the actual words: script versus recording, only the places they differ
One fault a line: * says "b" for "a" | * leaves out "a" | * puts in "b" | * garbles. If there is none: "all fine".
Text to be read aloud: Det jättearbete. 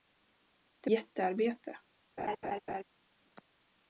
all fine